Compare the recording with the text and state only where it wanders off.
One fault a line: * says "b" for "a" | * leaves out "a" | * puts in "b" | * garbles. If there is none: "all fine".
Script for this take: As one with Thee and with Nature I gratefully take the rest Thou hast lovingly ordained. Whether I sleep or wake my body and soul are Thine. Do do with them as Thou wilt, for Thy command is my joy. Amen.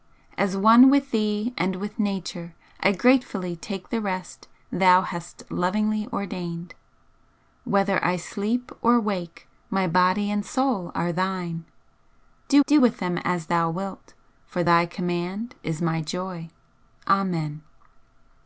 all fine